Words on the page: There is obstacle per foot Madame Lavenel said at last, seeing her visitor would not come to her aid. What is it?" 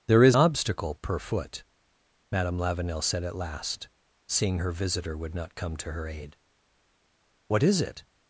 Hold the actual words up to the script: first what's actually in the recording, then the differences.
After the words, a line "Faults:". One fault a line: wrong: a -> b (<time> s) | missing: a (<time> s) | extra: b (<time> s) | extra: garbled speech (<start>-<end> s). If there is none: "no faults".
There is obstacle per foot Madame Lavenel said at last, seeing her visitor would not come to her aid. What is it?"
Faults:
no faults